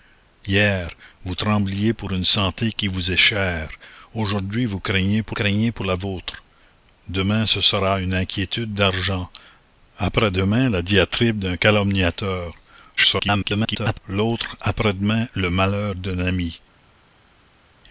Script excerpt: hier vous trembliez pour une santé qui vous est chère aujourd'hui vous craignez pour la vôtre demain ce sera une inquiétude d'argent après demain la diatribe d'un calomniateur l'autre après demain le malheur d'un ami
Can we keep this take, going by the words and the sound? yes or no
no